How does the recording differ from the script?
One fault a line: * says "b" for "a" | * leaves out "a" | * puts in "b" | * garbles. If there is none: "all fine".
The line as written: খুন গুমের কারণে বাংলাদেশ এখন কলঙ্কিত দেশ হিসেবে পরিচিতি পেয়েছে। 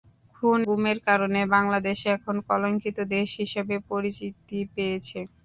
all fine